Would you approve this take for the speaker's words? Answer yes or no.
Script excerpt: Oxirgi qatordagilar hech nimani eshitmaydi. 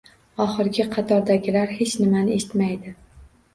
yes